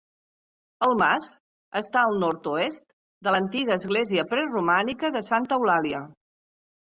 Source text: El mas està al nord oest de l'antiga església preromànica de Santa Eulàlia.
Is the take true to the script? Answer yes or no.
yes